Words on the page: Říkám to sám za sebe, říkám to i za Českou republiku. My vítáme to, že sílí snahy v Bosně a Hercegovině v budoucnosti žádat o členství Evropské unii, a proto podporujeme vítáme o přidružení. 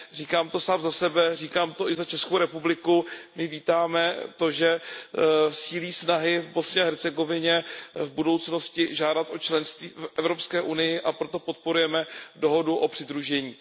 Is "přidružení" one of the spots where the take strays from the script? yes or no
no